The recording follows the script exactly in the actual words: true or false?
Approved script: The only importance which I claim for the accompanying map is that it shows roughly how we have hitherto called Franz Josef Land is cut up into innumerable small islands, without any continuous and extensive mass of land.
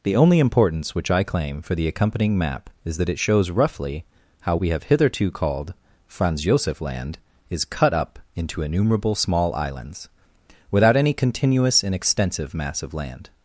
true